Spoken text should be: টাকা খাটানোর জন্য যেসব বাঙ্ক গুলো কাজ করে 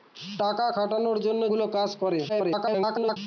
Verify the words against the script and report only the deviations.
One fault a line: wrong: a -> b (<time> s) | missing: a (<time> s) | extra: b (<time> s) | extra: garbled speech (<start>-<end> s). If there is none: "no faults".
missing: যেসব বাঙ্ক (1.4 s)
extra: garbled speech (2.3-3.2 s)